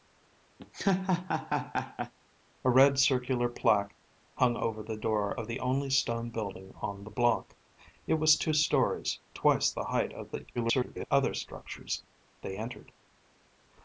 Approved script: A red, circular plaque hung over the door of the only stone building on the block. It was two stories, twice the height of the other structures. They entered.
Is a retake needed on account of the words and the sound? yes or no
yes